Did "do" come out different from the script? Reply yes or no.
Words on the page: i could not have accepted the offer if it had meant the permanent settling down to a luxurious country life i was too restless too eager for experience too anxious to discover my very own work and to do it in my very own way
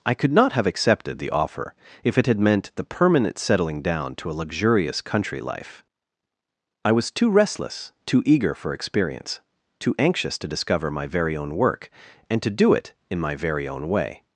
no